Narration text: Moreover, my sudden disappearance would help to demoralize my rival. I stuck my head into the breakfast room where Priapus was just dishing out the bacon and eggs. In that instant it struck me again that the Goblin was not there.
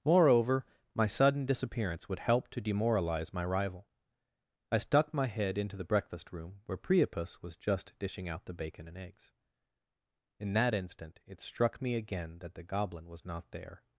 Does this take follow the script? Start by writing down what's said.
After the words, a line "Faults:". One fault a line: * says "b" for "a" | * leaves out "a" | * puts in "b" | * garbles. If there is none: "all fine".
Moreover, my sudden disappearance would help to demoralize my rival. I stuck my head into the breakfast room where Priapus was just dishing out the bacon and eggs. In that instant it struck me again that the Goblin was not there.
Faults:
all fine